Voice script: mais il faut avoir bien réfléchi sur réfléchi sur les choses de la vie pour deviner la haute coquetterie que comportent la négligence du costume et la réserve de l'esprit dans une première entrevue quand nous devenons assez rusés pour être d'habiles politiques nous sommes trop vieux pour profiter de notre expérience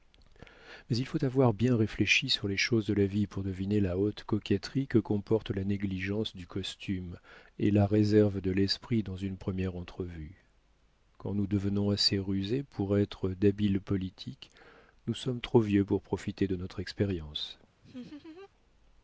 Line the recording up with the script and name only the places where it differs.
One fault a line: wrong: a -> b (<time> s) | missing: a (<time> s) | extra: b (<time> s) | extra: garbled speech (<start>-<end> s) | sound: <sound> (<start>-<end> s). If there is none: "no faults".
missing: réfléchi sur (2.5 s)
sound: laugh (17.8-18.5 s)